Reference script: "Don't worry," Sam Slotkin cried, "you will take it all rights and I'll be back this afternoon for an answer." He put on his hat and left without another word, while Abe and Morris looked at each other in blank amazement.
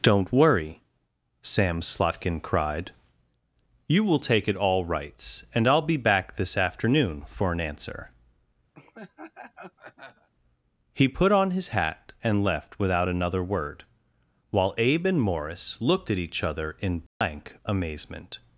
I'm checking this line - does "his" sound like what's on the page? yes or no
yes